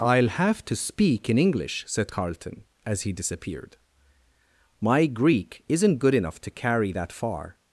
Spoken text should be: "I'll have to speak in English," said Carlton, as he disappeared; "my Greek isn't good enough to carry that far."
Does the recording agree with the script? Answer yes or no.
yes